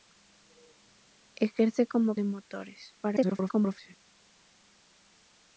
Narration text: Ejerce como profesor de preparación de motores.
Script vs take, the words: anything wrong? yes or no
yes